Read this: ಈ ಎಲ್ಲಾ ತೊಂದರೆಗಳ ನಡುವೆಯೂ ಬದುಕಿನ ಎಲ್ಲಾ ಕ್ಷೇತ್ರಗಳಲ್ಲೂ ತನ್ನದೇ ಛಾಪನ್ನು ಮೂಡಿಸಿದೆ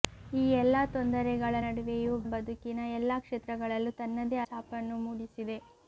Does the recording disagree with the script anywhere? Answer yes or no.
no